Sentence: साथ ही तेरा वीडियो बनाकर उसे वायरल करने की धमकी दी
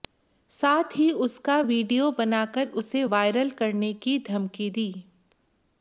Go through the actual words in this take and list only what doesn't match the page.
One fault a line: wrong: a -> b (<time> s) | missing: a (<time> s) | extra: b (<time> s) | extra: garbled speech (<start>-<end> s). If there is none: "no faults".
wrong: तेरा -> उसका (1.2 s)